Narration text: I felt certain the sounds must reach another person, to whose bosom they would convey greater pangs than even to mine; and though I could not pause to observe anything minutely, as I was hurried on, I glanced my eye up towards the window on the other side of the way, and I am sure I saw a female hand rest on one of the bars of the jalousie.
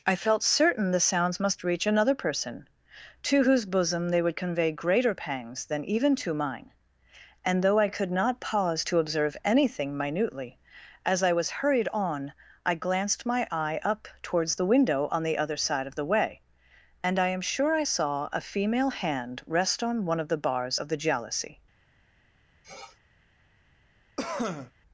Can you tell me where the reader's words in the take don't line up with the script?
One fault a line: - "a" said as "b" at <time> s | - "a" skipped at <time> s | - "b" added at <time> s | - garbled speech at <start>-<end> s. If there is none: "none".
none